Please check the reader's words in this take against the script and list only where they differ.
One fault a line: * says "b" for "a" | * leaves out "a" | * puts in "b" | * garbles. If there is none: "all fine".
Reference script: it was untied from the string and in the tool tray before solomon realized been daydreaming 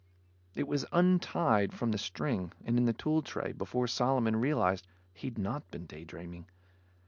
* puts in "he'd not"